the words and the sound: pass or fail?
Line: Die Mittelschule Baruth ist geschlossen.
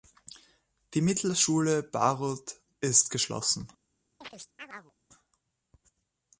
fail